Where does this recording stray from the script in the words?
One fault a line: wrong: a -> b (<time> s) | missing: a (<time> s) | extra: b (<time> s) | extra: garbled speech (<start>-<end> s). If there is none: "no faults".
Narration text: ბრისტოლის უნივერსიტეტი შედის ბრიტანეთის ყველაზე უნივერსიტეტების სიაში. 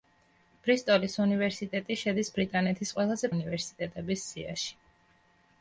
no faults